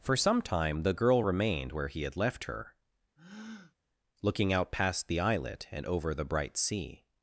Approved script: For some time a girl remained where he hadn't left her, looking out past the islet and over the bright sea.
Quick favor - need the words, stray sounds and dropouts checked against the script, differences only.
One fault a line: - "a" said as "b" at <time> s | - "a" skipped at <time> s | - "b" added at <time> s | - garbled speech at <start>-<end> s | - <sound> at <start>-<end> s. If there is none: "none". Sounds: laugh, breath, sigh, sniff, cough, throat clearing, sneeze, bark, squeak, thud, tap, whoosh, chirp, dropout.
- "a" said as "the" at 0.8 s
- "hadn't" said as "had" at 2.0 s
- breath at 3.2-3.7 s